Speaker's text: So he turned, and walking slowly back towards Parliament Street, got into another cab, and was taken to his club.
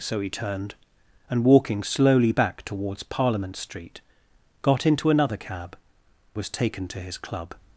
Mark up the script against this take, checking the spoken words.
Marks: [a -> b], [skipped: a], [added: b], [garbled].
So he turned, and walking slowly back towards Parliament Street, got into another cab, [skipped: and] was taken to his club.